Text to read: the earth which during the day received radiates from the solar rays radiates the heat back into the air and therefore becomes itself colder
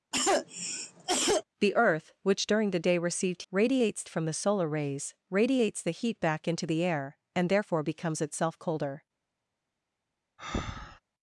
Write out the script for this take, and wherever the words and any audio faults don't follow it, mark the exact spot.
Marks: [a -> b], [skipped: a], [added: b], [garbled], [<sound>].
[cough] the earth which during the day received radiates from the solar rays radiates the heat back into the air and therefore becomes itself colder [breath]